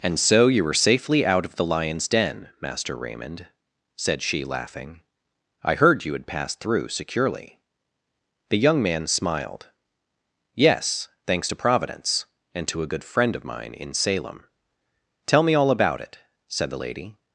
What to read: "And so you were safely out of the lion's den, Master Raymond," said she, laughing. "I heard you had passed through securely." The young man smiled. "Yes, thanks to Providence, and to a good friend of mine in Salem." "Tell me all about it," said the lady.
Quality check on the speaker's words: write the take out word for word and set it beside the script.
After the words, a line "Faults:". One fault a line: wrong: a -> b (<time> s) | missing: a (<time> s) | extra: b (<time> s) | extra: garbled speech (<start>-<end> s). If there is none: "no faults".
"And so you were safely out of the lion's den, Master Raymond," said she, laughing. "I heard you had passed through securely." The young man smiled. "Yes, thanks to Providence, and to a good friend of mine in Salem." "Tell me all about it," said the lady.
Faults:
no faults